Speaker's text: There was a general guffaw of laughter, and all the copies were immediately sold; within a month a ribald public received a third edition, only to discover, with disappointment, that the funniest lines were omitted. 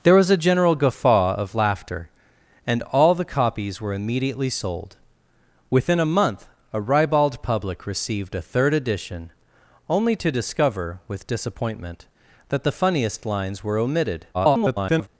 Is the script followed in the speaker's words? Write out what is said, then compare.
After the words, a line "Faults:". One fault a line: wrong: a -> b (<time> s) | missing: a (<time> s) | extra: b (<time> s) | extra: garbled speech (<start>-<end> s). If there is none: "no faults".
There was a general guffaw of laughter, and all the copies were immediately sold; within a month a ribald public received a third edition, only to discover, with disappointment, that the funniest lines were omitted. [garbled]
Faults:
extra: garbled speech (14.3-15.1 s)